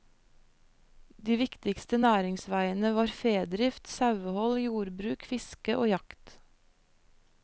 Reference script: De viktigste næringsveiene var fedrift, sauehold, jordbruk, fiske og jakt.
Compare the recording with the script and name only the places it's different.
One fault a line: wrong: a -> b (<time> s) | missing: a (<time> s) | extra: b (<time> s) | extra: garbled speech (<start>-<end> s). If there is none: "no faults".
no faults